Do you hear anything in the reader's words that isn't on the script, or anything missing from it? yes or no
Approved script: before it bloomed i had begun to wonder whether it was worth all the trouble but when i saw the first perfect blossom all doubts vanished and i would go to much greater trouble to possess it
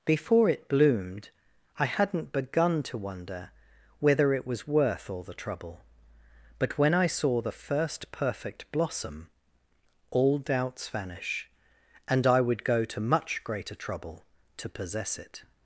yes